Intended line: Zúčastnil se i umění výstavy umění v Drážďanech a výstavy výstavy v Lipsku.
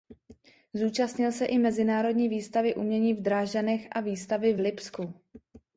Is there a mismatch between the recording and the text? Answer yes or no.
yes